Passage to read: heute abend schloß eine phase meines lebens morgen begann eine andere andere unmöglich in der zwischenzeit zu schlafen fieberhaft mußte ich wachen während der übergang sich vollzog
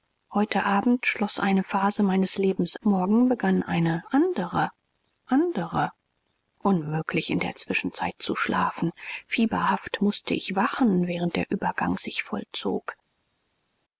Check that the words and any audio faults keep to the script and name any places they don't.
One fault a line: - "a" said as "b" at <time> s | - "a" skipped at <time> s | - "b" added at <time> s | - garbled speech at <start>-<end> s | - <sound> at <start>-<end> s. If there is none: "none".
none